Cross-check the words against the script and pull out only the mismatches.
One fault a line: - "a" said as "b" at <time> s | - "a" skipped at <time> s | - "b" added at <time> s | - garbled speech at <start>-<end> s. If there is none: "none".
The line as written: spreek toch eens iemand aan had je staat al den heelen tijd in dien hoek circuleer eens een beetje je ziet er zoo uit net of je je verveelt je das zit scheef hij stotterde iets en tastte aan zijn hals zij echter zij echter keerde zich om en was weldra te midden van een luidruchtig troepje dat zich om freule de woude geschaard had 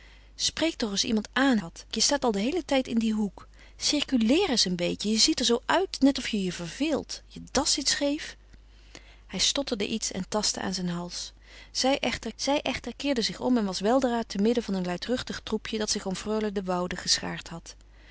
none